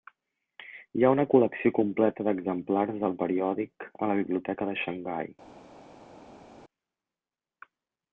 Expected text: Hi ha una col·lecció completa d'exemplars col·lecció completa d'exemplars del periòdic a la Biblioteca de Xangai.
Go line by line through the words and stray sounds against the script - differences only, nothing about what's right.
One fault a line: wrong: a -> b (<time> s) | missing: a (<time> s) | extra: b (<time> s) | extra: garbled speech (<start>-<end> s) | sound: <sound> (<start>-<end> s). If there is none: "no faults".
missing: col·lecció completa d'exemplars (3.0 s)